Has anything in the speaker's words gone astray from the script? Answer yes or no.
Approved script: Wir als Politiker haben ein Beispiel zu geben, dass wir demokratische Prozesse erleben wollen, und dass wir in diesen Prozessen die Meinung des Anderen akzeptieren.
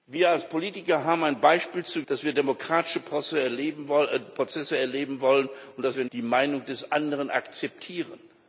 yes